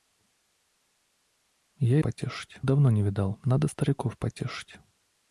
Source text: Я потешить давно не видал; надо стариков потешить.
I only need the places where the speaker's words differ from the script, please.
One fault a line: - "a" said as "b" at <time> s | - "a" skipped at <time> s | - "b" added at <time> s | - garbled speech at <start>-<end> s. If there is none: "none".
none